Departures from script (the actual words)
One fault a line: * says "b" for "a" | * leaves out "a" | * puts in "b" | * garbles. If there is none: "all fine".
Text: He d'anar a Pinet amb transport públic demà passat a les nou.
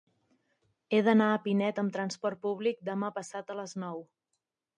all fine